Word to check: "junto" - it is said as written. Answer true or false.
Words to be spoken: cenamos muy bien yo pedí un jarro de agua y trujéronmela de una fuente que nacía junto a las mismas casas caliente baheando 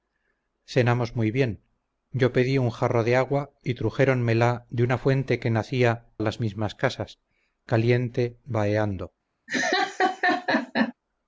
false